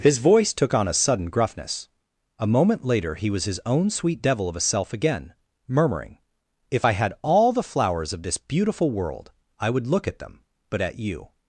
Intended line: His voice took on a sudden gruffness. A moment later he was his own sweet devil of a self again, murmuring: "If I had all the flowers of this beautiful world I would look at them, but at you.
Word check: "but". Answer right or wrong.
right